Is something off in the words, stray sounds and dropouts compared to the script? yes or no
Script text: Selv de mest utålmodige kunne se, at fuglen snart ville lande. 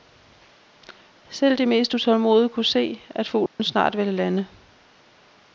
yes